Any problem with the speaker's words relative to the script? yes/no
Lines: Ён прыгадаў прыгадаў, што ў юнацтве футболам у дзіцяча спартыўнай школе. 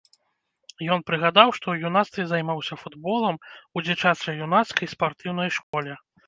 yes